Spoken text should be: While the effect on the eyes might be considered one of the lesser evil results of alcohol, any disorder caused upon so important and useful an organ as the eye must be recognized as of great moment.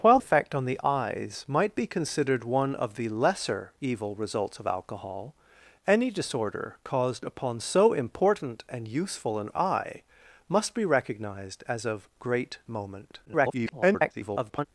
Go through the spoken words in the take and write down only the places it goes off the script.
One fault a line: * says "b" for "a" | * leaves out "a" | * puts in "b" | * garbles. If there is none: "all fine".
* leaves out "the"
* leaves out "organ as the"
* garbles